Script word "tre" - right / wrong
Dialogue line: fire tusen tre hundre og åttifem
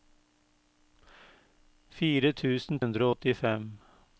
wrong